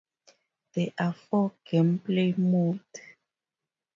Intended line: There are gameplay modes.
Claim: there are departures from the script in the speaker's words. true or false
true